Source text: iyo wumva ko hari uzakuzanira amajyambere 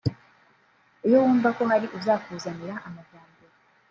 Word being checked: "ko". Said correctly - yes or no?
yes